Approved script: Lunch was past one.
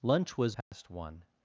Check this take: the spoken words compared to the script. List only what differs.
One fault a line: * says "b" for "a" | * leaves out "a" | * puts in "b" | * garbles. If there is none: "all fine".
all fine